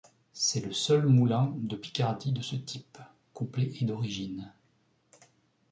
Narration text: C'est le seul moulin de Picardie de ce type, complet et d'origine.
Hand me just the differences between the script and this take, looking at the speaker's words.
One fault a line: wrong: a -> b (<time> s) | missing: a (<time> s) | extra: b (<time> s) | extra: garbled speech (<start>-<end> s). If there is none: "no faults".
no faults